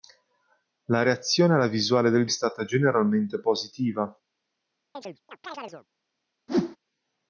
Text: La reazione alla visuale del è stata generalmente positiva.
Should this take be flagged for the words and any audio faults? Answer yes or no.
yes